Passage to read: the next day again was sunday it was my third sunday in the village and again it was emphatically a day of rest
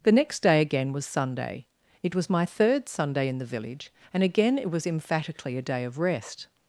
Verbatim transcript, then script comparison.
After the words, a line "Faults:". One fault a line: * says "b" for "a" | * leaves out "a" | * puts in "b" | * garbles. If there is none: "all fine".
the next day again was sunday it was my third sunday in the village and again it was emphatically a day of rest
Faults:
all fine